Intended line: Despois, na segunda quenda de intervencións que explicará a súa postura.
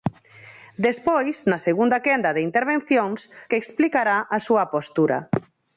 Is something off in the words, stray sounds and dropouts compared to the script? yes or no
no